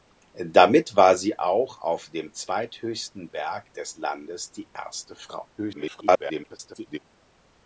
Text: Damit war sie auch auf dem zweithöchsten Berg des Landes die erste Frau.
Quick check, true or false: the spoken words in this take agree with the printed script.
false